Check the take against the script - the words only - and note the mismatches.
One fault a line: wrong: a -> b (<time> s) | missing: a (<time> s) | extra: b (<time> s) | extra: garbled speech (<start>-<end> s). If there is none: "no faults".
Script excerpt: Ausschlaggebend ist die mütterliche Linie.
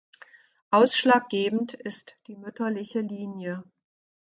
no faults